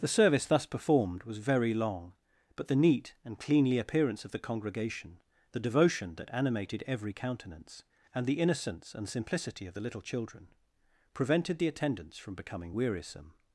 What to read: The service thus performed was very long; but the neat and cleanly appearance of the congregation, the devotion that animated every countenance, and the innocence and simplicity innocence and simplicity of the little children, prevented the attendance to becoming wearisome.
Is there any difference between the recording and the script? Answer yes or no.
yes